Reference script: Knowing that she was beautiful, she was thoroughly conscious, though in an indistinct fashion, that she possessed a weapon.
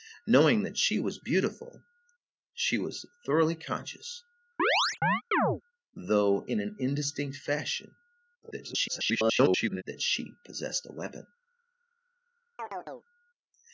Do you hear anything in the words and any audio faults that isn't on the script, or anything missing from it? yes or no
yes